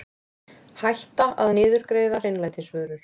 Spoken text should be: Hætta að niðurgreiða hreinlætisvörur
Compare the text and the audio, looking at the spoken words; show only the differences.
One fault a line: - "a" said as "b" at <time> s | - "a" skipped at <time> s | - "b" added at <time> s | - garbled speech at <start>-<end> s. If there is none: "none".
none